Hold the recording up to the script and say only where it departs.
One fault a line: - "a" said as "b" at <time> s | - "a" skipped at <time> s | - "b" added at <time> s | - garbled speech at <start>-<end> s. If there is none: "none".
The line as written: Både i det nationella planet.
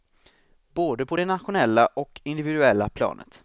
- "i" said as "på" at 1.0 s
- "och individuella" added at 1.9 s